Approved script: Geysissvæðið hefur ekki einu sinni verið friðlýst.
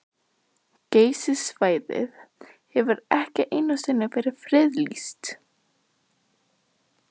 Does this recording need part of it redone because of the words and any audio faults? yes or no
no